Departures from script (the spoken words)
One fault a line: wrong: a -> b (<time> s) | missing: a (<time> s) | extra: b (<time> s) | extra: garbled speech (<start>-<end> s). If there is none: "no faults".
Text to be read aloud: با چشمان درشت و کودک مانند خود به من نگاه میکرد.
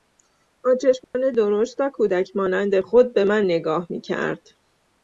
no faults